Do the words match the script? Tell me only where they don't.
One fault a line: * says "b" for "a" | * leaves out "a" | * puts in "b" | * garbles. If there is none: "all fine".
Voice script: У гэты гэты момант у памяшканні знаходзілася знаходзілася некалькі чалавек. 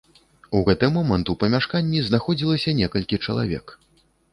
* leaves out "гэты"
* leaves out "знаходзілася"